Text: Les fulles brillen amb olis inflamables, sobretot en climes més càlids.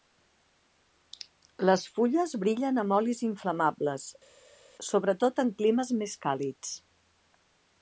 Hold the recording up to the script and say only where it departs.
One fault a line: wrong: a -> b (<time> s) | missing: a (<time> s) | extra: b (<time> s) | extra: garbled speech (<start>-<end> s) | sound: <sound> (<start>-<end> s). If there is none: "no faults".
no faults